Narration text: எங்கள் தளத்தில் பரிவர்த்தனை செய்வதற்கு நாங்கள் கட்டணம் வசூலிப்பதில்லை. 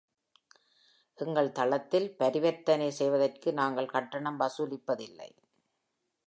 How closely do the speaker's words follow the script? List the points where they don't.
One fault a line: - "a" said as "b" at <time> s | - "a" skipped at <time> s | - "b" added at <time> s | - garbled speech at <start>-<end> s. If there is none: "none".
none